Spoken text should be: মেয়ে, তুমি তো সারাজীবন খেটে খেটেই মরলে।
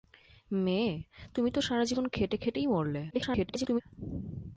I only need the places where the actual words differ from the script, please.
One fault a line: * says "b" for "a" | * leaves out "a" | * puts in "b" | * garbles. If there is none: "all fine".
* garbles